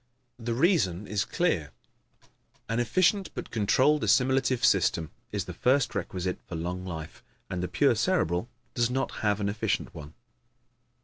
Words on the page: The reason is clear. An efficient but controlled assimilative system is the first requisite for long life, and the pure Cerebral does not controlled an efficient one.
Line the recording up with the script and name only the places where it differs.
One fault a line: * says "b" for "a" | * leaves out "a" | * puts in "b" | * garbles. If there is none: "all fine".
* says "have" for "controlled"